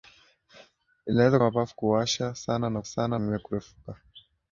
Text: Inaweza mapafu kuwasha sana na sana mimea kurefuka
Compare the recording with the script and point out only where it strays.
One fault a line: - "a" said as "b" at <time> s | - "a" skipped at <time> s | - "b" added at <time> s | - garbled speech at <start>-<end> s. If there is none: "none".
none